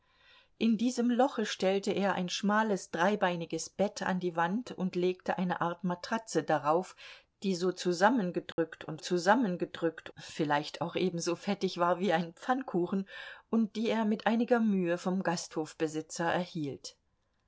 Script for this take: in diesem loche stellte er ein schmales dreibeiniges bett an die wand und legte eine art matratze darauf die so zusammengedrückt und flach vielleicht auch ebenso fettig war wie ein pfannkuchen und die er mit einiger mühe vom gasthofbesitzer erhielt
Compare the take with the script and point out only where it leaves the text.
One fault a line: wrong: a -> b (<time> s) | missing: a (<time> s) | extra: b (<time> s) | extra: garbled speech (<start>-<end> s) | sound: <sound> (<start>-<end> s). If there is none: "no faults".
sound: dropout (8.5-8.6 s)
wrong: flach -> zusammengedrückt (9.0 s)